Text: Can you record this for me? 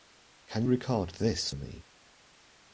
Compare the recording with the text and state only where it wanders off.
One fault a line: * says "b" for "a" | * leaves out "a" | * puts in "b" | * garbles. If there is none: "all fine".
* leaves out "you"
* leaves out "for"